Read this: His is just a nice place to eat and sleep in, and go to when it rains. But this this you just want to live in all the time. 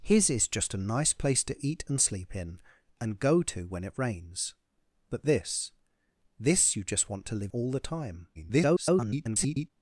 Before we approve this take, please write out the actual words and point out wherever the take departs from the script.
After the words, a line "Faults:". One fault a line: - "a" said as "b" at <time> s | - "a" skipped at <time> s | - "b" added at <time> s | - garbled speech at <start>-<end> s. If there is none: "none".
His is just a nice place to eat and sleep in, and go to when it rains. But this this you just want to live all the time. [garbled]
Faults:
- "in" skipped at 7.5 s
- garbled speech at 8.3-9.7 s